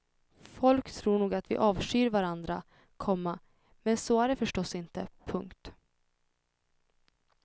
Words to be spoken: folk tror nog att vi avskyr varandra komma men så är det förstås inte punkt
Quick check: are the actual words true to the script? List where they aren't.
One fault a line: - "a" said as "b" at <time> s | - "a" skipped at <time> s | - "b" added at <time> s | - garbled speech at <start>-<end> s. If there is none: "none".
none